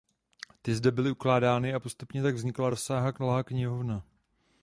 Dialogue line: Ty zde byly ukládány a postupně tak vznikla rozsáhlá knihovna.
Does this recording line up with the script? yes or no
yes